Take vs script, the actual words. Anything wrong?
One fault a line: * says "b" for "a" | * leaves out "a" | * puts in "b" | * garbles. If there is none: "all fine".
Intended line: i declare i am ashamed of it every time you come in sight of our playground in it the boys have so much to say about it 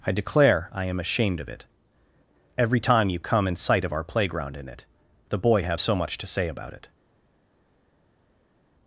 * says "boy" for "boys"